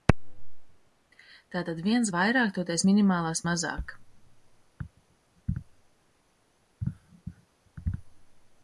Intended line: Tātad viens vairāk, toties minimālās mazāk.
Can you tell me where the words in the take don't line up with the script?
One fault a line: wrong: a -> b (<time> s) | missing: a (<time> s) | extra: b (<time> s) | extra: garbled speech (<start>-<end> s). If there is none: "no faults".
no faults